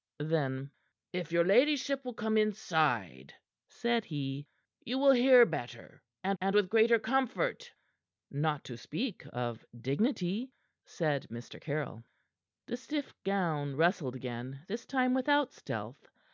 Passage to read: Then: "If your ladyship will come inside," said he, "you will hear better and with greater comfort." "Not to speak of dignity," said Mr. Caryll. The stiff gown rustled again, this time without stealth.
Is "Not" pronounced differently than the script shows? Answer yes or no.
no